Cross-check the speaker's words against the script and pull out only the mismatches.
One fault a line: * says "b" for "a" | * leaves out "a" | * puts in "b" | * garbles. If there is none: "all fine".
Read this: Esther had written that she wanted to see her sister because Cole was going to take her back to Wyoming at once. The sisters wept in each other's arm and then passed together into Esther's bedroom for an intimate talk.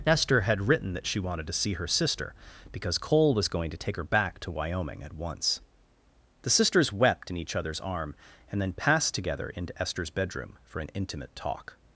all fine